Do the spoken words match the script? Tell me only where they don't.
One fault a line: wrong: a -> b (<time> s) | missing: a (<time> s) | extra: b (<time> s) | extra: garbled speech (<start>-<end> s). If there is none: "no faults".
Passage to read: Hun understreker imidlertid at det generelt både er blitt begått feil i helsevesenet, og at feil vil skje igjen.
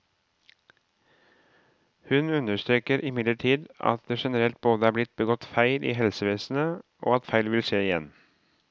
no faults